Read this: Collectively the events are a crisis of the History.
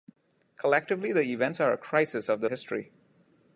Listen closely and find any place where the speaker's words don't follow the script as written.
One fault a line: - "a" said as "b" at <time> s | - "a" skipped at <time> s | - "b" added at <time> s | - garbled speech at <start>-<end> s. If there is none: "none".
none